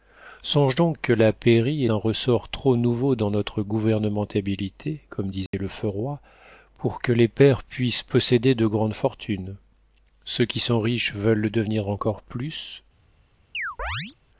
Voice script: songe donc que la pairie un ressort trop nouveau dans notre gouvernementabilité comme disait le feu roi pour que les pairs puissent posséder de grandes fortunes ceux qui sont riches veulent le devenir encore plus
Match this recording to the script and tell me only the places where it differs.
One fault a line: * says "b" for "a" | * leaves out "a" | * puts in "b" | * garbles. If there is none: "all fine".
all fine